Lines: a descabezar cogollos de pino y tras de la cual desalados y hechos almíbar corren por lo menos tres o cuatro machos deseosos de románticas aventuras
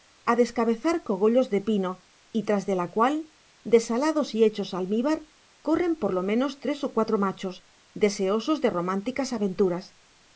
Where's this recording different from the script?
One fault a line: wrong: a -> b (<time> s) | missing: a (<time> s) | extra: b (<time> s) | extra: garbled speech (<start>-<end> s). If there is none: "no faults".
no faults